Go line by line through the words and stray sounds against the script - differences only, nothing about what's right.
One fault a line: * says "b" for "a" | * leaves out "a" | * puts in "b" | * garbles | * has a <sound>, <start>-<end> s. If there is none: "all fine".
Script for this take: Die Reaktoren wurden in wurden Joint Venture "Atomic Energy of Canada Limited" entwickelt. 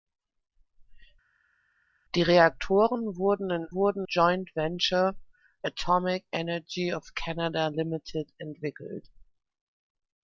all fine